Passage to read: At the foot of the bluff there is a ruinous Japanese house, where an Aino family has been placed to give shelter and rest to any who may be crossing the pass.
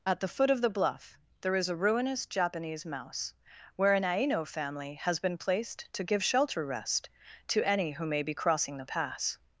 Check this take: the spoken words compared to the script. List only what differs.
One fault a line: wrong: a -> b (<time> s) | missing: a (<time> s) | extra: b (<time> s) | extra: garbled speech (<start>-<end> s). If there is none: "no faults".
wrong: house -> mouse (2.9 s)
missing: and (6.7 s)